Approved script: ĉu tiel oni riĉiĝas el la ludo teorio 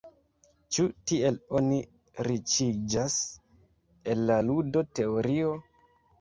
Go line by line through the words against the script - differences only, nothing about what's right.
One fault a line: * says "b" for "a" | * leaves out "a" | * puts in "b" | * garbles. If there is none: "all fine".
all fine